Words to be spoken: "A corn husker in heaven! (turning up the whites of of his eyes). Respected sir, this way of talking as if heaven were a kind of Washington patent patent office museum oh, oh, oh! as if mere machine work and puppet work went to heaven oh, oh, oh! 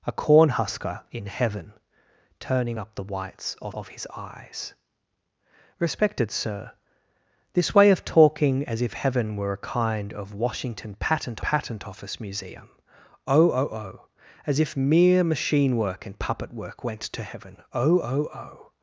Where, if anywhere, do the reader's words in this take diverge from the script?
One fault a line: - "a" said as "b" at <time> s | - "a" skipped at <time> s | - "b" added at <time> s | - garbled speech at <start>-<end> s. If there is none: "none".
none